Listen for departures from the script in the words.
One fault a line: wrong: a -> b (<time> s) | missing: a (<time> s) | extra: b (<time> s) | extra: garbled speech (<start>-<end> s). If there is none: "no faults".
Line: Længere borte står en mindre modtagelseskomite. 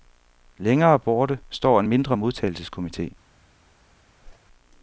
no faults